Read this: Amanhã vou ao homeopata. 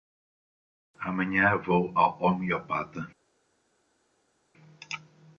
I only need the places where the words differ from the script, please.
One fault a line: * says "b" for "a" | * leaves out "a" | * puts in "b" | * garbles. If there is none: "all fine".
all fine